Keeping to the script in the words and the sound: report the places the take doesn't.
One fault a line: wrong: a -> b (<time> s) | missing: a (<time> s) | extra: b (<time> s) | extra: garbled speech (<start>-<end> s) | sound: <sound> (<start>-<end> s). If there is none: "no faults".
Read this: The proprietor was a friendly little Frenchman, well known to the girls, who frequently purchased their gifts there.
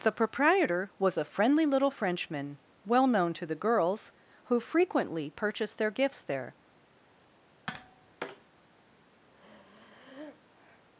sound: tap (7.7-8.5 s)
sound: breath (9.3-10.9 s)